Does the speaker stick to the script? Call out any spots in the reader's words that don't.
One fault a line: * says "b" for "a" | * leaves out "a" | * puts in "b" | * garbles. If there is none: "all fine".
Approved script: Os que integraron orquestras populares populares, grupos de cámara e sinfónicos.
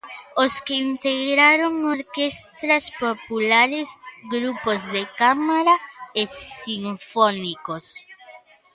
* leaves out "populares"